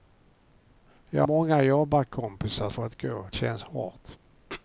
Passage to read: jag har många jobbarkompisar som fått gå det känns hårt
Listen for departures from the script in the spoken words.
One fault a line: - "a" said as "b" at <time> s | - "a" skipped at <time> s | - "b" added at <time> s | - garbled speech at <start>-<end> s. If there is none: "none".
- "har" skipped at 1.2 s
- "som" skipped at 2.7 s
- "det" skipped at 3.3 s